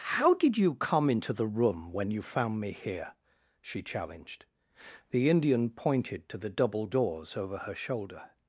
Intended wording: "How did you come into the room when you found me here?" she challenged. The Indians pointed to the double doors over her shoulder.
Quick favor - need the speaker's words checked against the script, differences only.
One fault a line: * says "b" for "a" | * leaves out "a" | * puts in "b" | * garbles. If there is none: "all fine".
* says "Indian" for "Indians"